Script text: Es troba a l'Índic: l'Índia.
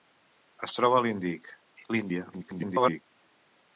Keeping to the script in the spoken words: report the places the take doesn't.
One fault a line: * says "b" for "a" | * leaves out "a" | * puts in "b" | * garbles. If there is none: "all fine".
* garbles